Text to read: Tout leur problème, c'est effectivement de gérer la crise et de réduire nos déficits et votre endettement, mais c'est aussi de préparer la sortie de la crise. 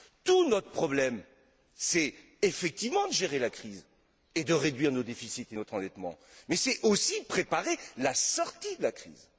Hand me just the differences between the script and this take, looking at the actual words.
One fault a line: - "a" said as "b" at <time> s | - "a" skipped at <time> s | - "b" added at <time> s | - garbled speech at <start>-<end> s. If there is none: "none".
- "leur" said as "notre" at 0.5 s
- "votre" said as "notre" at 5.5 s